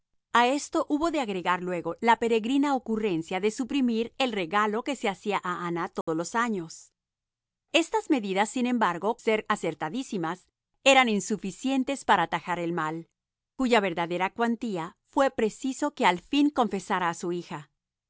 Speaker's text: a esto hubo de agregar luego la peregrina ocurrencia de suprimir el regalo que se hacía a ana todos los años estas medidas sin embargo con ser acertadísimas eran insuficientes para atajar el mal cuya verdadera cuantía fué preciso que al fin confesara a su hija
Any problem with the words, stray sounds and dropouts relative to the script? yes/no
yes